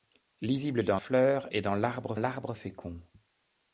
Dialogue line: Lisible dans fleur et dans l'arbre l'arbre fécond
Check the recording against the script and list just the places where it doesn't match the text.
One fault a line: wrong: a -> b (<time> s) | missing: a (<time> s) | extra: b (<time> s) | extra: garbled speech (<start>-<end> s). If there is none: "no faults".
no faults